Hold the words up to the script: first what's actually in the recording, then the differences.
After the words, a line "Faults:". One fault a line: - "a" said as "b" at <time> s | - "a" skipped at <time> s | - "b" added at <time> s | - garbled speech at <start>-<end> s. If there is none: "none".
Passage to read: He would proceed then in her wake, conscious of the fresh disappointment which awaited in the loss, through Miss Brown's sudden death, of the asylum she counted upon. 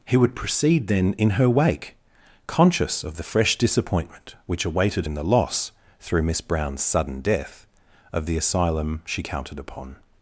He would proceed then in her wake, conscious of the fresh disappointment which awaited in the loss, through Miss Brown's sudden death, of the asylum she counted upon.
Faults:
none